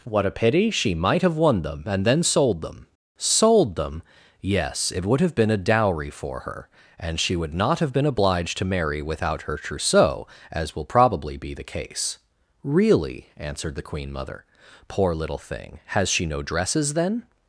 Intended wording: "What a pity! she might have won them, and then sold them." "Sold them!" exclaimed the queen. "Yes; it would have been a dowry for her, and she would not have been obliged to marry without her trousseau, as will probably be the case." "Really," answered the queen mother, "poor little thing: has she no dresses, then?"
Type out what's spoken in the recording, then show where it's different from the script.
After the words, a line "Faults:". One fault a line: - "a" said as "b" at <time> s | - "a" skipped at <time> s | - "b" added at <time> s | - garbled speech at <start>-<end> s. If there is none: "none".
"What a pity! she might have won them, and then sold them." "Sold them!" "Yes; it would have been a dowry for her, and she would not have been obliged to marry without her trousseau, as will probably be the case." "Really," answered the queen mother, "poor little thing: has she no dresses, then?"
Faults:
- "exclaimed the queen" skipped at 4.0 s